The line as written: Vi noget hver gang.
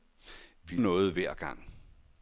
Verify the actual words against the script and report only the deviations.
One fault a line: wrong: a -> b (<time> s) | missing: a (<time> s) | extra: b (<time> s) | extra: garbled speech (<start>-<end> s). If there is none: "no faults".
no faults